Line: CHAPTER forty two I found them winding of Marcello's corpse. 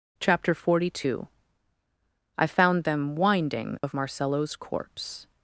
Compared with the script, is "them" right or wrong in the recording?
right